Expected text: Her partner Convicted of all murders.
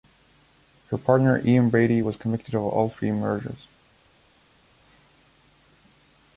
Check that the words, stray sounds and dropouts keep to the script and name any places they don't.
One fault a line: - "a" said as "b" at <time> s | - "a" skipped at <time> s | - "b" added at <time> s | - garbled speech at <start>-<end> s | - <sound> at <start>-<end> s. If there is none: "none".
- "Ian Brady was" added at 1.4 s
- "three" added at 2.9 s